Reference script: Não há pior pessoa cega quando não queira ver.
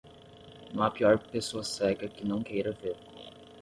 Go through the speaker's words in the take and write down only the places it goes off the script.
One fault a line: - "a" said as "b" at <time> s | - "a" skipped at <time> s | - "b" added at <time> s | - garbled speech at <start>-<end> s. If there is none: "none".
- "quando" said as "que" at 2.1 s